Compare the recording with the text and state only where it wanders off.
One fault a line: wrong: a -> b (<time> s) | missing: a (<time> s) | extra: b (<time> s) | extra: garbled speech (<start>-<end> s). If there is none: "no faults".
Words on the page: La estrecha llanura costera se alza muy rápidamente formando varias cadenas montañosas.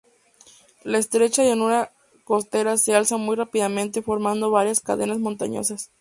no faults